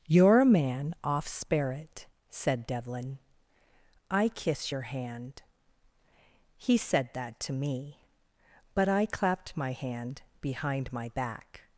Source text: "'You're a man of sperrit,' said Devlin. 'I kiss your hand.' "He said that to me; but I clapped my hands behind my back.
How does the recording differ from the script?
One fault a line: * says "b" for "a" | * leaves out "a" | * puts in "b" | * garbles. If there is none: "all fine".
* says "off" for "of"
* says "hand" for "hands"